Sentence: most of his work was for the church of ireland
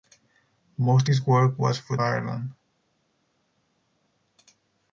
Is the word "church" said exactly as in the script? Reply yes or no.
no